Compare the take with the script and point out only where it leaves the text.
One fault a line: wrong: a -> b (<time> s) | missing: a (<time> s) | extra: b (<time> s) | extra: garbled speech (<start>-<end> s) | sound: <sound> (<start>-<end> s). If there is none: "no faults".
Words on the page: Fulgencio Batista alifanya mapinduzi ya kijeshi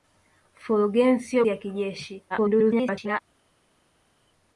missing: Batista alifanya mapinduzi (1.4 s)
extra: garbled speech (2.3-3.2 s)